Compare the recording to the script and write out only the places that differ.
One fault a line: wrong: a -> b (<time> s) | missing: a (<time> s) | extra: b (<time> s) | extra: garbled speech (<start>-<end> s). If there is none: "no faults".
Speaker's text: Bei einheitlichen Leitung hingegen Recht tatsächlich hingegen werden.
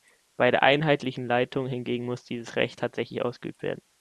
extra: der (0.5 s)
extra: muss dieses (2.0 s)
wrong: hingegen -> ausgeübt (3.2 s)